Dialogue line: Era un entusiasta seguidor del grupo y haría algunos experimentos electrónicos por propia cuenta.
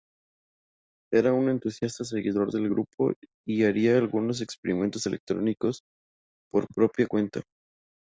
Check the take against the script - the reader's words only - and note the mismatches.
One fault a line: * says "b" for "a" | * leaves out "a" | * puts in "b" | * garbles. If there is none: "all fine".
all fine